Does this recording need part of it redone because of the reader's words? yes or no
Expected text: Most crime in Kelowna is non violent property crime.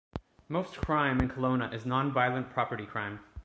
no